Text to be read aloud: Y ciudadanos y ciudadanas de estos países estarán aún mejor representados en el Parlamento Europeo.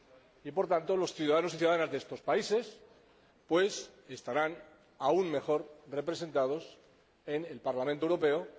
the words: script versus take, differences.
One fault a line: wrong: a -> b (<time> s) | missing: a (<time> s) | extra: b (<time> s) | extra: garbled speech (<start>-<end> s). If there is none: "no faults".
extra: por tanto los (0.5 s)